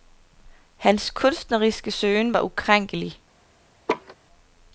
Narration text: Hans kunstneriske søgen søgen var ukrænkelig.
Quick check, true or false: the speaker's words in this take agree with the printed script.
false